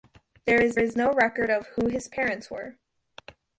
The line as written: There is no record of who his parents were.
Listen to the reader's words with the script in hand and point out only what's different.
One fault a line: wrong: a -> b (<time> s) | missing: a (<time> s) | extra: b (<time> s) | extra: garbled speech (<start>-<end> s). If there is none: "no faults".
extra: is (0.8 s)